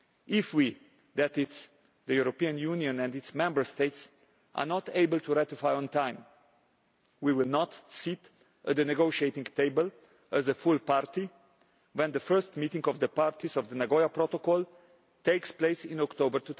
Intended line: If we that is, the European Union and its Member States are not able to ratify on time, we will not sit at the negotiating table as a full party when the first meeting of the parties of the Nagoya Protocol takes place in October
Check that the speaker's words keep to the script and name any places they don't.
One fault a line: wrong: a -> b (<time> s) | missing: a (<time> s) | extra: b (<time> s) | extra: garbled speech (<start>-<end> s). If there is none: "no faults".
no faults